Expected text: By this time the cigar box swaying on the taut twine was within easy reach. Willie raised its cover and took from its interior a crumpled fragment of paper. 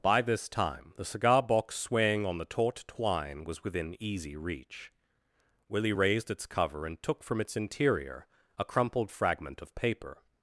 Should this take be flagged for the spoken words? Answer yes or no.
no